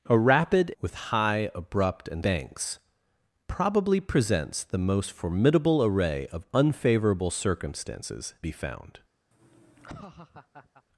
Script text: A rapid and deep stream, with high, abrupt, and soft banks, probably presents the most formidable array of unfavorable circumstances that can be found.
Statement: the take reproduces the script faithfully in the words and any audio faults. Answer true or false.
false